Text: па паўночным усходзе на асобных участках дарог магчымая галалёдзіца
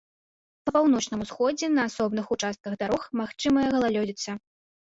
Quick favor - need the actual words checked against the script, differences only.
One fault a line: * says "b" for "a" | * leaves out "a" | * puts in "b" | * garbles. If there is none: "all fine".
all fine